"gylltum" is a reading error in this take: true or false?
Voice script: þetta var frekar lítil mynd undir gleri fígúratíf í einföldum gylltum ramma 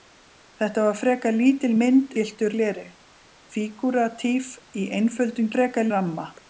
true